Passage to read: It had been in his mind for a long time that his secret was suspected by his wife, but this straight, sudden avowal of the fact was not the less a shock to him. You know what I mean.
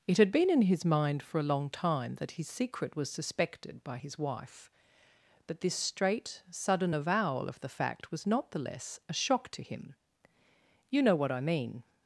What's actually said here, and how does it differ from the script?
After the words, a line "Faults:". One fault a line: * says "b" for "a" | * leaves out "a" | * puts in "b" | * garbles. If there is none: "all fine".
It had been in his mind for a long time that his secret was suspected by his wife, but this straight, sudden avowal of the fact was not the less a shock to him. You know what I mean.
Faults:
all fine